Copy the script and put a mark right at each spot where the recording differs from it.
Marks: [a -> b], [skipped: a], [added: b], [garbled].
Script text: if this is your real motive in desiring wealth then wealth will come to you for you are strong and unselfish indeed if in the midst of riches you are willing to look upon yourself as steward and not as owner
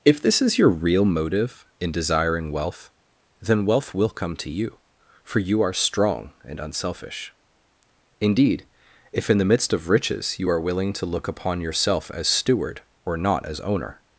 if this is your real motive in desiring wealth then wealth will come to you for you are strong and unselfish indeed if in the midst of riches you are willing to look upon yourself as steward [and -> or] not as owner